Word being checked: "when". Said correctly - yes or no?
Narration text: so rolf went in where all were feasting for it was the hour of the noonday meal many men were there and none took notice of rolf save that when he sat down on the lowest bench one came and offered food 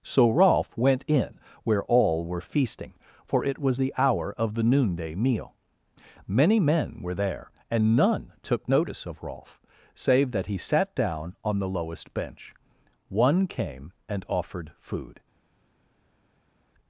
no